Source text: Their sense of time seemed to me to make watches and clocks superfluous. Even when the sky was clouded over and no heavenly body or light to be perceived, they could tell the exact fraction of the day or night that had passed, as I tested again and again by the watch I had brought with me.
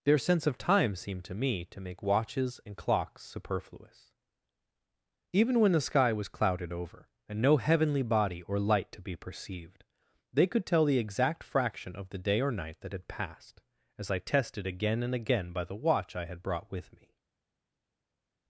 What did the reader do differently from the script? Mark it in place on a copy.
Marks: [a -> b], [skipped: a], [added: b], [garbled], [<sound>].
Their sense of time seemed to me to make watches and clocks superfluous. Even when the sky was clouded over and no heavenly body or light to be perceived, they could tell the exact fraction of the day or night that had passed, as I tested again and again by the watch I had brought with me.